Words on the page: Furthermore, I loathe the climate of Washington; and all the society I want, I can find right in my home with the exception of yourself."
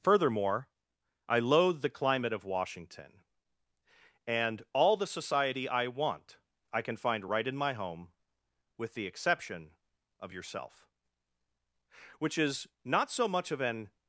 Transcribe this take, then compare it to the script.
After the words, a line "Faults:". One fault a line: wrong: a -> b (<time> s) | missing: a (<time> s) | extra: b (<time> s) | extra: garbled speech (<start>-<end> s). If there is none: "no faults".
Furthermore, I loathe the climate of Washington; and all the society I want, I can find right in my home with the exception of yourself." "Which is not so much of an
Faults:
extra: Which is not so much of an (12.2 s)